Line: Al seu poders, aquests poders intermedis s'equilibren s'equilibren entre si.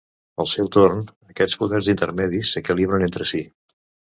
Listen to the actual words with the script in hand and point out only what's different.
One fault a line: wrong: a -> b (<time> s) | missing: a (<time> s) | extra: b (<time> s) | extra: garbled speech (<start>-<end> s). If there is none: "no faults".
wrong: poders -> torn (0.8 s)
missing: s'equilibren (3.1 s)